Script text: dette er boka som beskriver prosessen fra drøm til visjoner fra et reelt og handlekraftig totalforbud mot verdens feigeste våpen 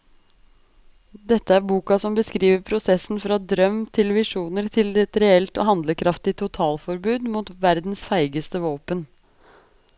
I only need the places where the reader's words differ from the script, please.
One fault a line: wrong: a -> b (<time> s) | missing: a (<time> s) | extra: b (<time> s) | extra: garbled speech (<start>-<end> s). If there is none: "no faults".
wrong: fra -> til (4.8 s)